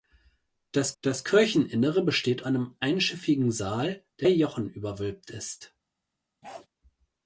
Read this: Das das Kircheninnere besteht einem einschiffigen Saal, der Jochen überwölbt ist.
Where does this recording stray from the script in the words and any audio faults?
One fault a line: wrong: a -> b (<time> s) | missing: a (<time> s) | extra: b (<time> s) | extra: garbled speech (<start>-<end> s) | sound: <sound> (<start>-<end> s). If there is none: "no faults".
sound: bark (6.4-6.7 s)